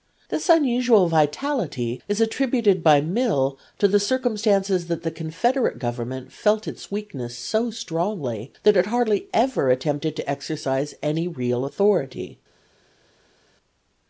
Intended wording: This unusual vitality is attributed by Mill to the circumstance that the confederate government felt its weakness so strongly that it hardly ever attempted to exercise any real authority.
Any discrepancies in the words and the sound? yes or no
no